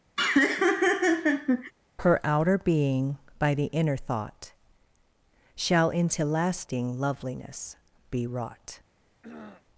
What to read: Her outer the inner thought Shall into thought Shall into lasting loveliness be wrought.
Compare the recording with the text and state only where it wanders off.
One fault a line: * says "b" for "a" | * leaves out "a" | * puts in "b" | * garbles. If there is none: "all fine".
* puts in "being by"
* leaves out "thought Shall into"